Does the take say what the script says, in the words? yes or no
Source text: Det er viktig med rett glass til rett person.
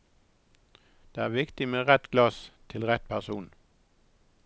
yes